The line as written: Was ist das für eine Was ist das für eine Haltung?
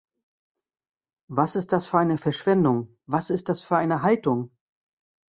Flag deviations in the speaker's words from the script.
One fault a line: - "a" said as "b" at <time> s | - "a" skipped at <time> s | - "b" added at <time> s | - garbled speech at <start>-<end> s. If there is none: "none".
- "Verschwendung" added at 2.1 s